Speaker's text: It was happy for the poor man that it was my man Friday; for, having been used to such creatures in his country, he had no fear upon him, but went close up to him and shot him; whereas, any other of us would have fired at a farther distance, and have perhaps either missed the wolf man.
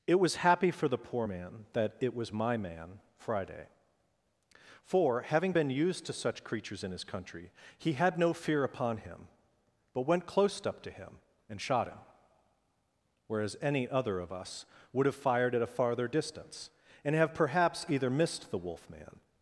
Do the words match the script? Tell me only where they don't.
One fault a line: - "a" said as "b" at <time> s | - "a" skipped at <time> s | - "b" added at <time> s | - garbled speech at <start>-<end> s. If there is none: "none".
none